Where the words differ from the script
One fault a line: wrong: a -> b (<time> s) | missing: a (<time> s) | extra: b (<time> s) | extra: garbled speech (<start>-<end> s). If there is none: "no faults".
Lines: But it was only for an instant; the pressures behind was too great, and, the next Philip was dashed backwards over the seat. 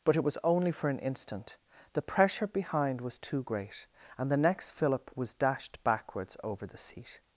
wrong: pressures -> pressure (2.0 s)